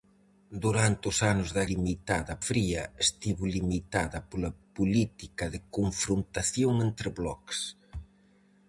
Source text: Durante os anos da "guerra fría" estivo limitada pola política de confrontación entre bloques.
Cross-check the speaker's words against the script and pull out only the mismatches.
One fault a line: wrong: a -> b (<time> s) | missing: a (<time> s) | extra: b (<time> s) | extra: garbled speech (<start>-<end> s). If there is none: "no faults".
wrong: guerra -> limitada (1.7 s)